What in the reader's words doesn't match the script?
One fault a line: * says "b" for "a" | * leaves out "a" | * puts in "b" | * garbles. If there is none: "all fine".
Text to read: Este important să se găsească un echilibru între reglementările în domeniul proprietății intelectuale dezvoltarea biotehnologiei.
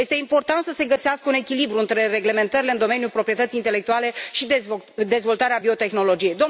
* puts in "și"